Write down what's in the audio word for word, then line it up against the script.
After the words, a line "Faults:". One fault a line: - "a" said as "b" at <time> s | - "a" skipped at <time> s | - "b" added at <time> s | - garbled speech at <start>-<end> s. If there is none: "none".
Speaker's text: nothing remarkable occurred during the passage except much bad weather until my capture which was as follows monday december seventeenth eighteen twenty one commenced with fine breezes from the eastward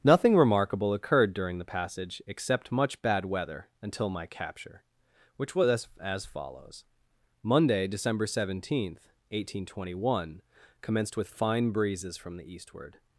nothing remarkable occurred during the passage except much bad weather until my capture which was as as follows monday december seventeenth eighteen twenty one commenced with fine breezes from the eastward
Faults:
- "as" added at 6.0 s